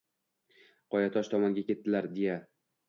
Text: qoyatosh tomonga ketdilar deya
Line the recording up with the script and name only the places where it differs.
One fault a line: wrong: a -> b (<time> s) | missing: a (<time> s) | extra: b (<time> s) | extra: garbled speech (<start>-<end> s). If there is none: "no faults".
no faults